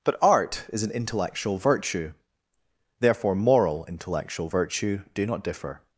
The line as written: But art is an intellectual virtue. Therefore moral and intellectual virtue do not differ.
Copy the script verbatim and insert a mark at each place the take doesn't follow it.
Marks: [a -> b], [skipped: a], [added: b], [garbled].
But art is an intellectual virtue. Therefore moral [skipped: and] intellectual virtue do not differ.